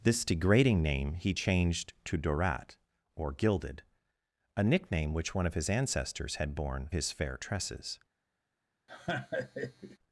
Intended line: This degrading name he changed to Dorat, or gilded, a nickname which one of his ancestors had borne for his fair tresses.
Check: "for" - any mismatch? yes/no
yes